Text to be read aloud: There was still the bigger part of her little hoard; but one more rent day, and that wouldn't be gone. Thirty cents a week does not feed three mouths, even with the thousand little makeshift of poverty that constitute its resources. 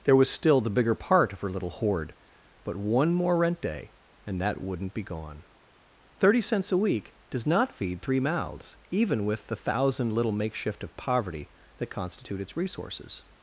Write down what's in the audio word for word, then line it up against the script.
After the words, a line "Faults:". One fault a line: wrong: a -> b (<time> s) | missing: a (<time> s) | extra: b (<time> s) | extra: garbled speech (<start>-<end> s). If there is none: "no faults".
There was still the bigger part of her little hoard; but one more rent day, and that wouldn't be gone. Thirty cents a week does not feed three mouths, even with the thousand little makeshift of poverty that constitute its resources.
Faults:
no faults